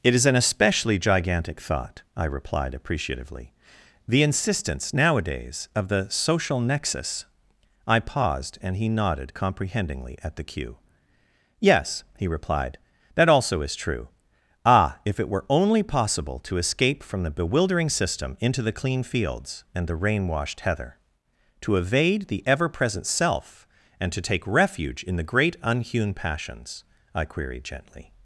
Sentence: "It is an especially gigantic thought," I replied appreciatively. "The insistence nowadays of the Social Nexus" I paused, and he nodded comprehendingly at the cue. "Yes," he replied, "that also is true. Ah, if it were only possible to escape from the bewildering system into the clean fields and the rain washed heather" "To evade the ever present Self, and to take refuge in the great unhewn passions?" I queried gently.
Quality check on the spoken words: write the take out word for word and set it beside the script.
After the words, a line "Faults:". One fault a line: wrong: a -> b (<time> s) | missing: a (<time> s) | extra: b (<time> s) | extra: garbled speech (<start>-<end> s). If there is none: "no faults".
"It is an especially gigantic thought," I replied appreciatively. "The insistence nowadays of the Social Nexus" I paused, and he nodded comprehendingly at the cue. "Yes," he replied, "that also is true. Ah, if it were only possible to escape from the bewildering system into the clean fields and the rain washed heather" "To evade the ever present Self, and to take refuge in the great unhewn passions?" I queried gently.
Faults:
no faults